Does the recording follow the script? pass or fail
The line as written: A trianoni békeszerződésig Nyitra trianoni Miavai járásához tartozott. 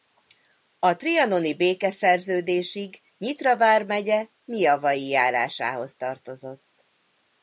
fail